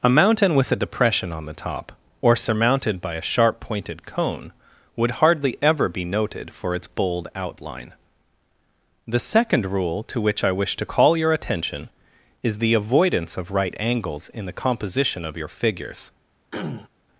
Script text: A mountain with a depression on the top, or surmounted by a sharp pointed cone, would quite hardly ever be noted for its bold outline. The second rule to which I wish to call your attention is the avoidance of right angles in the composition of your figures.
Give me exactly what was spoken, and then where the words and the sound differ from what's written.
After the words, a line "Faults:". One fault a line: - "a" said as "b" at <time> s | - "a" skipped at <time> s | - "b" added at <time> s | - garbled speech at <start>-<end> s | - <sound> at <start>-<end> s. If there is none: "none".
A mountain with a depression on the top, or surmounted by a sharp pointed cone, would hardly ever be noted for its bold outline. The second rule to which I wish to call your attention is the avoidance of right angles in the composition of your figures.
Faults:
- "quite" skipped at 5.1 s
- throat clearing at 16.5-16.9 s